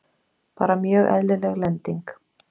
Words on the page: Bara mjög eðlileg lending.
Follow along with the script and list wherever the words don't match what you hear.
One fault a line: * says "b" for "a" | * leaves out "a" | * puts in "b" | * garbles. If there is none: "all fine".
all fine